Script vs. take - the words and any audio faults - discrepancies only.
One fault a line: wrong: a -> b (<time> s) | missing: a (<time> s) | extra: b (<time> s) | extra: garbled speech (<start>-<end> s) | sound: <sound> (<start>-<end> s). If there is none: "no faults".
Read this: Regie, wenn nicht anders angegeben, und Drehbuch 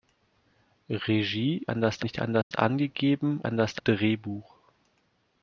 wrong: wenn -> anders (1.7 s)
sound: dropout (2.4-2.5 s)
wrong: und -> anders (3.4 s)